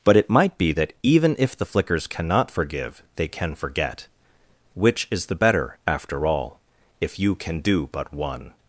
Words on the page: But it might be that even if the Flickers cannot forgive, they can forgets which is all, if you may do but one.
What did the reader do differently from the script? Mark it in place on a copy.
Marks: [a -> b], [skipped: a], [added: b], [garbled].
But it might be that even if the Flickers cannot forgive, they can [forgets -> forget] which is [added: the better after] all, if you [may -> can] do but one.